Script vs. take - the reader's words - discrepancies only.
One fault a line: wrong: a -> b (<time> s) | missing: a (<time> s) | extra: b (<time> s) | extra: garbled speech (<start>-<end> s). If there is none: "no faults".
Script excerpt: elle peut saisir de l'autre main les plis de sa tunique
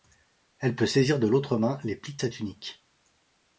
no faults